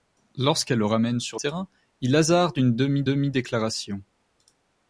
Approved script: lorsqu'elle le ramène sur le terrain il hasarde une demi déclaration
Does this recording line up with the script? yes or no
no